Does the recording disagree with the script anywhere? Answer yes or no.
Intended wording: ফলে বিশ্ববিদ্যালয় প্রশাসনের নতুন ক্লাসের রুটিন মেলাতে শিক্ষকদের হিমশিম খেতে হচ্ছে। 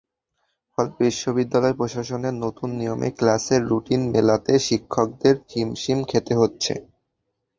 yes